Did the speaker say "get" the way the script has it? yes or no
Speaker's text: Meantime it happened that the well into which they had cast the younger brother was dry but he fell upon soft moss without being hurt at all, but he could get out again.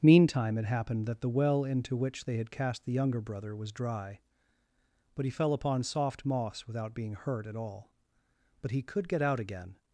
yes